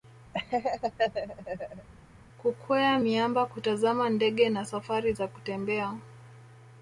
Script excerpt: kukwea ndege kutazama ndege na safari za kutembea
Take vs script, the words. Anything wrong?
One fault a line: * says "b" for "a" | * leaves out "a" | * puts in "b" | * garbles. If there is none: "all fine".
* says "miamba" for "ndege"